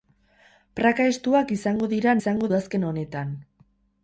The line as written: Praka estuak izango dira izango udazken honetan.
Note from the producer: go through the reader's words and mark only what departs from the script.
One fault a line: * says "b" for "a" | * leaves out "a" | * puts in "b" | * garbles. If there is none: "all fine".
all fine